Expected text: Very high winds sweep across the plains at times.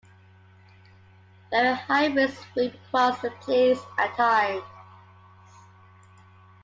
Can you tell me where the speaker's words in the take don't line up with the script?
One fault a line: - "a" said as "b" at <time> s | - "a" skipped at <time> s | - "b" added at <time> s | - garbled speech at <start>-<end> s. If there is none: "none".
none